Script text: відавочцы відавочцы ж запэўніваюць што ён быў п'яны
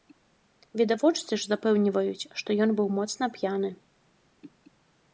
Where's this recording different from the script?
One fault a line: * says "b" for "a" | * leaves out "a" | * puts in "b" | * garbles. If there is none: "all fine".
* leaves out "відавочцы"
* puts in "моцна"